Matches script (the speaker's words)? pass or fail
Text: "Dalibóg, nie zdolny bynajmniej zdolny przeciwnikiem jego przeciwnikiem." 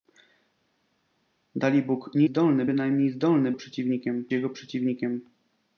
pass